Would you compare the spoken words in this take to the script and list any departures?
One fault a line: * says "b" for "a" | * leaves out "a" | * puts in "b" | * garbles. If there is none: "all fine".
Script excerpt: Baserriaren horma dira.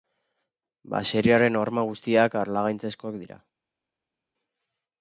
* puts in "guztiak harlangaitzezkoak"